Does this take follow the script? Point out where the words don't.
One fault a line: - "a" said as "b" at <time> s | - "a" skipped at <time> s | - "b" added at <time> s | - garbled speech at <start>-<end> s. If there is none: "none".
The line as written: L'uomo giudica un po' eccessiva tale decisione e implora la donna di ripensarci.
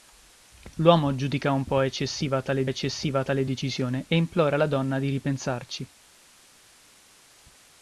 - "eccessiva tale" added at 2.6 s